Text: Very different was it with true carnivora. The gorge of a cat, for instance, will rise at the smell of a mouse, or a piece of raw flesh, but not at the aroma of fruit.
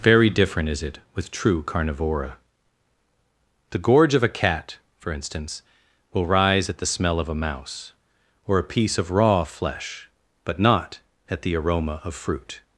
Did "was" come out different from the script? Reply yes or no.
yes